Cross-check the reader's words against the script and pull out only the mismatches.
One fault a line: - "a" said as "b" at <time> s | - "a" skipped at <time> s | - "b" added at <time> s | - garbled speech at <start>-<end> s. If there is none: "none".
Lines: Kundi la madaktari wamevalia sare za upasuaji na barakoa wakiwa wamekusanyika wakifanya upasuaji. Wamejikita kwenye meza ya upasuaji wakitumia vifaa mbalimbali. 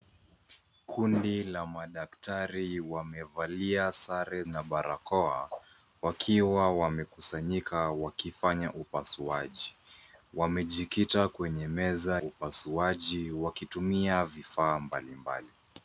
- "za upasuaji" skipped at 4.4 s
- "ya" skipped at 12.2 s